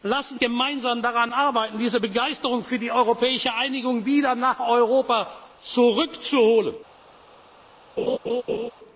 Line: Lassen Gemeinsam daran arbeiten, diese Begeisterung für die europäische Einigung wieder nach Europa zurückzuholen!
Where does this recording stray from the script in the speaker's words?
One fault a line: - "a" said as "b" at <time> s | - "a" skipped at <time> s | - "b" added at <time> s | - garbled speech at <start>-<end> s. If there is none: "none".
none